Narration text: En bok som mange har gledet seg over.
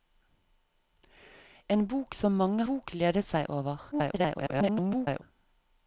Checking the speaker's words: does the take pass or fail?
fail